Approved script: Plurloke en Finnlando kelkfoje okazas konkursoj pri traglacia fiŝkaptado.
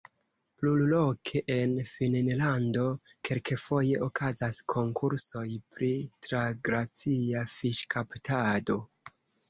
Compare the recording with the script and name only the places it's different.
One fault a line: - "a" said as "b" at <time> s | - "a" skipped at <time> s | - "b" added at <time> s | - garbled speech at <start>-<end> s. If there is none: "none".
none